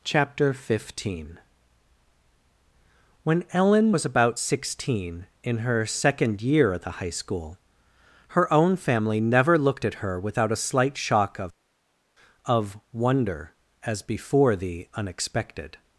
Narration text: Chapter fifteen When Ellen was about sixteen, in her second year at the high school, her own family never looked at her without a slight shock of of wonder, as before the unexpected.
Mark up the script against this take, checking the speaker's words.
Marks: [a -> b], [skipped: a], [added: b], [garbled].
Chapter fifteen When Ellen was about sixteen, in her second year at the high school, her own family never looked at her without a slight shock of of wonder, as before the unexpected.